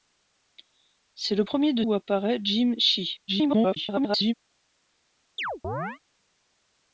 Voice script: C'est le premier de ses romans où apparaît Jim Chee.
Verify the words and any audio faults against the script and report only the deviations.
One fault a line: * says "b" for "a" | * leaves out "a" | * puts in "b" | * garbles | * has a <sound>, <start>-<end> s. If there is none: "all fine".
* leaves out "ses romans"
* garbles
* has a chirp, 5.4-6.0 s